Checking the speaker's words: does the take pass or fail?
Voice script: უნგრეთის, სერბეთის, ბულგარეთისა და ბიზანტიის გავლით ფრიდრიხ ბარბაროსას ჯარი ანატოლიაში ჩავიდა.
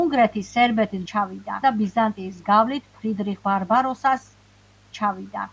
fail